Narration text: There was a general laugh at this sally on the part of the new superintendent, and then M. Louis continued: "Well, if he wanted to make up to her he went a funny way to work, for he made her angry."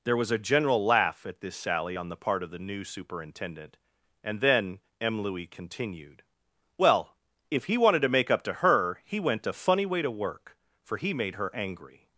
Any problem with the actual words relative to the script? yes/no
no